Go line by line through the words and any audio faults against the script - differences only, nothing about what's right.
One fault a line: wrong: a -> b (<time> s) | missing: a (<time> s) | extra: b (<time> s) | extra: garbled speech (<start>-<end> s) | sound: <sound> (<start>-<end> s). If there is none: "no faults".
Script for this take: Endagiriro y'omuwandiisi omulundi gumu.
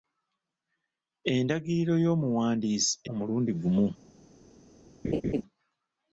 sound: laugh (5.0-5.4 s)